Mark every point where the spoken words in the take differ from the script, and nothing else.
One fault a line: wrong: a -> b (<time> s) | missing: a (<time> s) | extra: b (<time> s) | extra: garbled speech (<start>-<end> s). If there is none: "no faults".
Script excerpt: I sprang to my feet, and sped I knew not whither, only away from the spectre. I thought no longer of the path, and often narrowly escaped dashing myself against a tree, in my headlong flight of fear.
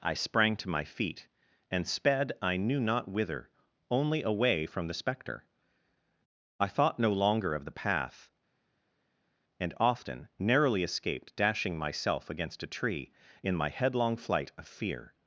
no faults